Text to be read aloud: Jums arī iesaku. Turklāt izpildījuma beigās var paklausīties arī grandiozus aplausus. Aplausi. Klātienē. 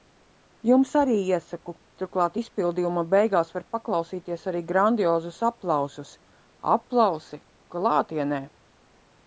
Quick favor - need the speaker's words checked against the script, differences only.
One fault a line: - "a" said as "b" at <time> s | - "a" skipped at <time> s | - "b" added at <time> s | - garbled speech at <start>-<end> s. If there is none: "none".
none